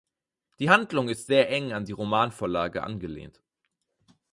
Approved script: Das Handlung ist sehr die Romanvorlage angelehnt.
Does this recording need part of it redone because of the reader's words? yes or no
yes